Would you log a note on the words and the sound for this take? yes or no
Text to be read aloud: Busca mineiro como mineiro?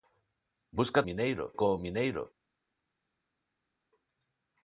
no